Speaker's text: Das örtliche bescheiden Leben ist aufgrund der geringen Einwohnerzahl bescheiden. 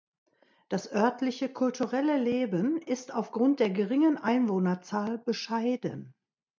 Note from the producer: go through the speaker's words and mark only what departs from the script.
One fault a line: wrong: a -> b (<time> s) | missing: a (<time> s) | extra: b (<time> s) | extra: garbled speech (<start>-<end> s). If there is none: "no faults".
wrong: bescheiden -> kulturelle (1.5 s)